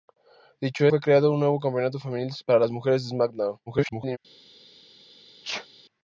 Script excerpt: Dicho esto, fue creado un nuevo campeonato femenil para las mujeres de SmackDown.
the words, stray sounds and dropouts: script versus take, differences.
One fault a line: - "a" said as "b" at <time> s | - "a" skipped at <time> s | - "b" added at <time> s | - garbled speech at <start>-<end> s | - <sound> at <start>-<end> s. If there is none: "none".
- "esto" skipped at 0.9 s
- garbled speech at 3.7-4.2 s
- sneeze at 5.4-5.7 s